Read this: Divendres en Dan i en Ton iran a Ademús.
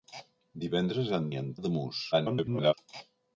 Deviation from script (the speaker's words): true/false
true